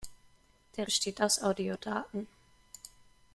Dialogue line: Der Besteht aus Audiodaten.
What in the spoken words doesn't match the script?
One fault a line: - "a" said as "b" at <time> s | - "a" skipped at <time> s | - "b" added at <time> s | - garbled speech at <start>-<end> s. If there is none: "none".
none